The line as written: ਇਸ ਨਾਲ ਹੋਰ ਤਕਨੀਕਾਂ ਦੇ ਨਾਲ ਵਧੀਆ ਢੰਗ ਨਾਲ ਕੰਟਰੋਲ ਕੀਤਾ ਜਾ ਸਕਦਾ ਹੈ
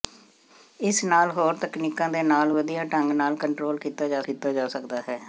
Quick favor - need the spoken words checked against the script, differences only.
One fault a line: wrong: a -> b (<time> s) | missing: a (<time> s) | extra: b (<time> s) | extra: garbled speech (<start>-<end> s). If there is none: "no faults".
extra: ਕੀਤਾ ਜਾ (4.2 s)